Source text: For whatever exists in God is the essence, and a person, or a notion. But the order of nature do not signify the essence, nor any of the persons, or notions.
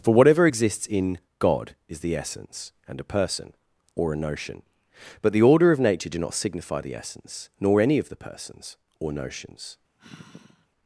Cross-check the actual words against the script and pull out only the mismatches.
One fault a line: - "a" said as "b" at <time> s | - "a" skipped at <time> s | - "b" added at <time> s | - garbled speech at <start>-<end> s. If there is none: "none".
none